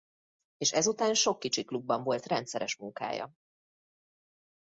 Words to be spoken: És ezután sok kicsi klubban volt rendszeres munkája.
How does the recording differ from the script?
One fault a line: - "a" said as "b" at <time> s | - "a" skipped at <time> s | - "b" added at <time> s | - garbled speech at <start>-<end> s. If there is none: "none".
none